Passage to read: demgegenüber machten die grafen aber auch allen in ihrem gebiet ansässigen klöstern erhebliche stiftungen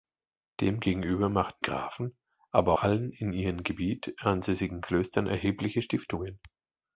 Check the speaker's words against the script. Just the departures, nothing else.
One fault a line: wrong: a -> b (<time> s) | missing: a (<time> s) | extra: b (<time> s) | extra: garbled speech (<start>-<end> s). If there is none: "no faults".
missing: die (1.6 s)
missing: auch (2.7 s)